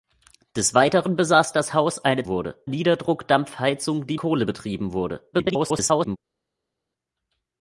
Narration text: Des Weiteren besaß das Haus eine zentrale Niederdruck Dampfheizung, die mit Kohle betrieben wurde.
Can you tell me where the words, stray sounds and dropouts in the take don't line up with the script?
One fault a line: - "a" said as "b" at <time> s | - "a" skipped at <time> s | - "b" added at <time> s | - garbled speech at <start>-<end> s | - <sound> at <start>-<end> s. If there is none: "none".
- "zentrale" said as "wurde" at 2.3 s
- "mit" skipped at 4.2 s
- garbled speech at 5.3-6.2 s